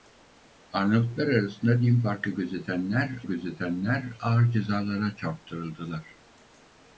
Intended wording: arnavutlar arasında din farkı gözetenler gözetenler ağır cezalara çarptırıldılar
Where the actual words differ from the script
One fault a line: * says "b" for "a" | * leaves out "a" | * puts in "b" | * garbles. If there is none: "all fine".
all fine